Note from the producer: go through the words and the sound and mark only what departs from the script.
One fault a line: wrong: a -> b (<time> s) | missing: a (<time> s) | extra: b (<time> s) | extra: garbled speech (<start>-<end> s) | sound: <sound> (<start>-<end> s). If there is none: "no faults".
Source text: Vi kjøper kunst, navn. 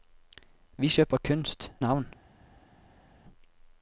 no faults